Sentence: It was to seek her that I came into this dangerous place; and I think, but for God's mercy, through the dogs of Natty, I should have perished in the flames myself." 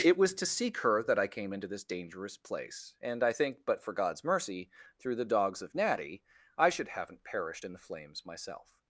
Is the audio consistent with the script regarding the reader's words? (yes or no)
no